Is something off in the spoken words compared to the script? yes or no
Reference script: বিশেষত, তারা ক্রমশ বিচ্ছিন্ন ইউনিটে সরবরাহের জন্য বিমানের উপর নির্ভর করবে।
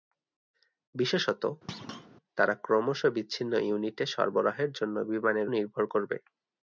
yes